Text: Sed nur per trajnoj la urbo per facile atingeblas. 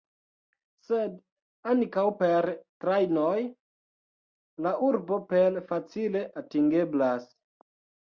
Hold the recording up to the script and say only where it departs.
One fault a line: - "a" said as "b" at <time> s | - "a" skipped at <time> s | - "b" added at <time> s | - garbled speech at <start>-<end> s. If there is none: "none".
- "nur" said as "ankaŭ" at 1.7 s